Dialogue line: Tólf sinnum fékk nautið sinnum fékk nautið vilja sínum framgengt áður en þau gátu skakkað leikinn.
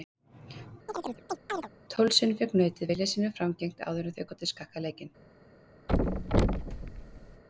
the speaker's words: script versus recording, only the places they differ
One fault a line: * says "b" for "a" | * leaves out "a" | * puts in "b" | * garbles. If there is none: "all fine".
* leaves out "sinnum fékk nautið"